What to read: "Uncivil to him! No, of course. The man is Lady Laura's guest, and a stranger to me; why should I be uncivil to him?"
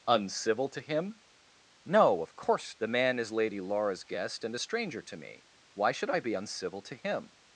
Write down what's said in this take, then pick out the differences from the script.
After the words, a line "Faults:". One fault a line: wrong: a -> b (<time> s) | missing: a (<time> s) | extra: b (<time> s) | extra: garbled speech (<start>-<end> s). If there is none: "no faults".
"Uncivil to him! No, of course. The man is Lady Laura's guest, and a stranger to me; why should I be uncivil to him?"
Faults:
no faults